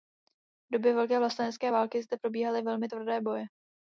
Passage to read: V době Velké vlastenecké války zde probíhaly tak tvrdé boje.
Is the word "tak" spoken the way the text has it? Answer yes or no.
no